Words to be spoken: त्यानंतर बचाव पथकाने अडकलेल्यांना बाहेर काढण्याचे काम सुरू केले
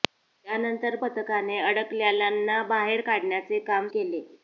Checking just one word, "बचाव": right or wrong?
wrong